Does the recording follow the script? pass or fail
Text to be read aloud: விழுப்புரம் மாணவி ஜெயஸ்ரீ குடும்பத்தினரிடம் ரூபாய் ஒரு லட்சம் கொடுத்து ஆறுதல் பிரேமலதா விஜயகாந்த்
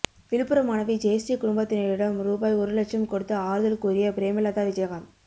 fail